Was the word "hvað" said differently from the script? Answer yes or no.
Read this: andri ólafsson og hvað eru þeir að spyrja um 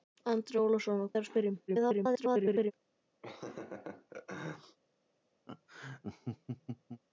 yes